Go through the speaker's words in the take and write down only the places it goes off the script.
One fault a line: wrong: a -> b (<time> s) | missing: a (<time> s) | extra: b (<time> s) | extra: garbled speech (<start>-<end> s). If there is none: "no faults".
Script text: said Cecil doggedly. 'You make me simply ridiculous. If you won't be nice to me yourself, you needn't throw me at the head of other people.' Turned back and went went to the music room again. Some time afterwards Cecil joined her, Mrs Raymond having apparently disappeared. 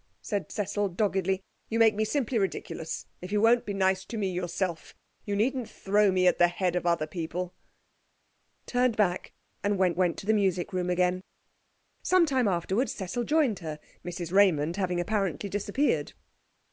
no faults